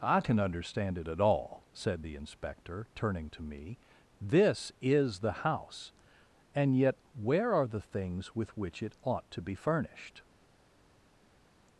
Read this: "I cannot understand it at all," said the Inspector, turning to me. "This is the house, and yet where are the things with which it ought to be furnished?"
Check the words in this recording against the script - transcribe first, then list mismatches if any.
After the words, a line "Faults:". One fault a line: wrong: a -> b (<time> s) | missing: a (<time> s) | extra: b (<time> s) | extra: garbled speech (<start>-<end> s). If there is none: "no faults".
"I can understand it at all," said the Inspector, turning to me. "This is the house, and yet where are the things with which it ought to be furnished?"
Faults:
wrong: cannot -> can (0.2 s)